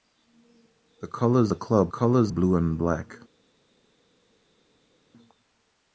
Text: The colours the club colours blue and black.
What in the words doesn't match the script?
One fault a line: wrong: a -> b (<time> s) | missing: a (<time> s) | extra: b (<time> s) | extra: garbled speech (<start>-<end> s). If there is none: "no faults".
no faults